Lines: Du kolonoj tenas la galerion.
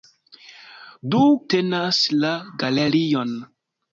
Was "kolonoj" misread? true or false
true